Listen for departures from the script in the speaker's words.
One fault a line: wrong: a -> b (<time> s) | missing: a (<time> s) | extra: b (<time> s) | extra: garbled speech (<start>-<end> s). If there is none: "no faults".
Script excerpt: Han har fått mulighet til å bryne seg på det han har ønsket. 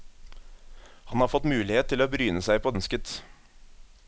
missing: det han har (2.7 s)